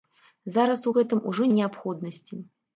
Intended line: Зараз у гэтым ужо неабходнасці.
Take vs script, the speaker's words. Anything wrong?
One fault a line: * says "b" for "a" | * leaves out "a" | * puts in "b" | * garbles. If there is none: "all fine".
all fine